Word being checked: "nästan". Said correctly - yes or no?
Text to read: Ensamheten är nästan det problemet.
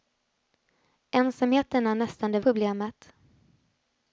yes